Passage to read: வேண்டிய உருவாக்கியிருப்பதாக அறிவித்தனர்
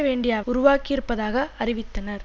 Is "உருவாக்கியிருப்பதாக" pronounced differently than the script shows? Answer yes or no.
no